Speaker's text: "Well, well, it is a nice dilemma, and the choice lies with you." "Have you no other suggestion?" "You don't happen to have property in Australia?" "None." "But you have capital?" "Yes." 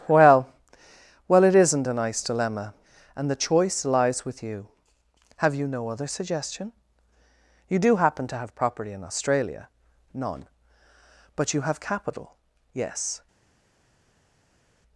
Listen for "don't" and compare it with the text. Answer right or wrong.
wrong